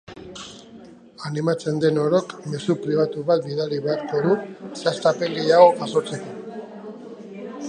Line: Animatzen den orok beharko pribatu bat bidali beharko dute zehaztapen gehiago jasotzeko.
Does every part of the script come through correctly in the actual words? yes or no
no